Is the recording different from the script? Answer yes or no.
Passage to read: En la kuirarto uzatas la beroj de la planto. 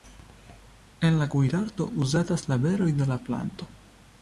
no